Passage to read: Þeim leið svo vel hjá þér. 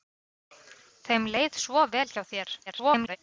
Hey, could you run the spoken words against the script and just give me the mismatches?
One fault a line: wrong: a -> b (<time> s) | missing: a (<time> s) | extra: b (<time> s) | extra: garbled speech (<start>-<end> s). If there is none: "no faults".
extra: garbled speech (2.7-3.2 s)